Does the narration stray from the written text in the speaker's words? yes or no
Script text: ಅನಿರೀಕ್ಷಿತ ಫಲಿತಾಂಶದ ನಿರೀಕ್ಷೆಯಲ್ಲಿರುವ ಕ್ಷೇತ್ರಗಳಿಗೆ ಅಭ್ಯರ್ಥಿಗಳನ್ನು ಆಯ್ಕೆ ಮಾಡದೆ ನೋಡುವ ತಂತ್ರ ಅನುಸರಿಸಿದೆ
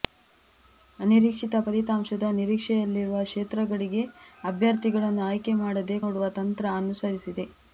no